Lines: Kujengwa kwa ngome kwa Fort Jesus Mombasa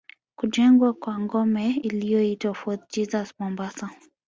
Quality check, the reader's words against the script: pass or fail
fail